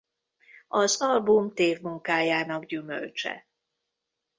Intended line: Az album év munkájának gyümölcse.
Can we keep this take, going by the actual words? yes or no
yes